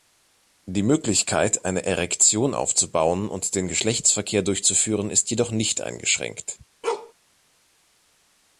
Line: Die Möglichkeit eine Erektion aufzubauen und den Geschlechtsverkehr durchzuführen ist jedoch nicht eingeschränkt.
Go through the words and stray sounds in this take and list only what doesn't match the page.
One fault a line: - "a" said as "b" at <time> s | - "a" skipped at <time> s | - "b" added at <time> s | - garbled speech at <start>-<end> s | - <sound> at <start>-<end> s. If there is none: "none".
- bark at 6.8-7.1 s